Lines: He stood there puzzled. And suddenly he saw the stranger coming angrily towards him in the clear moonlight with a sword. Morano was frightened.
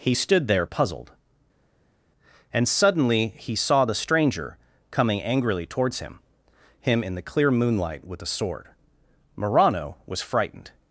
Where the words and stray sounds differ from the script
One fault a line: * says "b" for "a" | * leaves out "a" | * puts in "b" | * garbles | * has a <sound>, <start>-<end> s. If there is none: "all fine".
* puts in "him"